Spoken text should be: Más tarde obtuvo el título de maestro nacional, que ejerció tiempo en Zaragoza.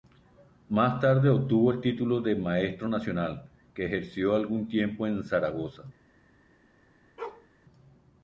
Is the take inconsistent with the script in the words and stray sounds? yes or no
yes